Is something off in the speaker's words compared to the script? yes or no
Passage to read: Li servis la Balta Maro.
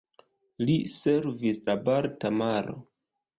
no